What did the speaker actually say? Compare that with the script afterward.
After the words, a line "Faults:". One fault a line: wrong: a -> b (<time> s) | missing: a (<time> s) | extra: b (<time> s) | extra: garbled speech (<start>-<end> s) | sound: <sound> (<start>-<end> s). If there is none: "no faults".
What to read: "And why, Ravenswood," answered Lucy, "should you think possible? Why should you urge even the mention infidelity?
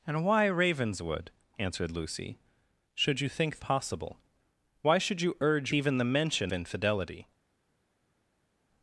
"And why, Ravenswood," answered Lucy, "should you think possible? Why should you urge even the mention infidelity?
Faults:
no faults